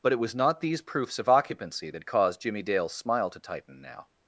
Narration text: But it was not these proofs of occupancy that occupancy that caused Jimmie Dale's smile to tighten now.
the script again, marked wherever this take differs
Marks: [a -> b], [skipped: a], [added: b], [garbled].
But it was not these proofs of occupancy that [skipped: occupancy that] caused Jimmie Dale's smile to tighten now.